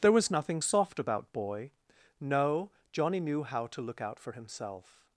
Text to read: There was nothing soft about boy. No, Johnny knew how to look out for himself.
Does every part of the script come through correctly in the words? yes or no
yes